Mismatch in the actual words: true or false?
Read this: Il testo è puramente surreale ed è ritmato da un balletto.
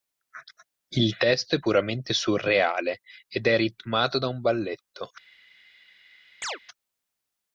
false